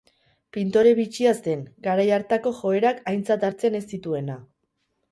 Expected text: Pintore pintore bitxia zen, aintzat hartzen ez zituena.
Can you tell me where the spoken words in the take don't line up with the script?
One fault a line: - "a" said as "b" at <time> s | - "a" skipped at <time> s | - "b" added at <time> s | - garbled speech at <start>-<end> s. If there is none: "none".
- "pintore" skipped at 0.9 s
- "garai hartako joerak" added at 1.9 s